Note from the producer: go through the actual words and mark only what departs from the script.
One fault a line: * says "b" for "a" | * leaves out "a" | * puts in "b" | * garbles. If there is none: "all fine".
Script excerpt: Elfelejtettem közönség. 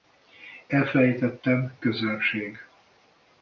all fine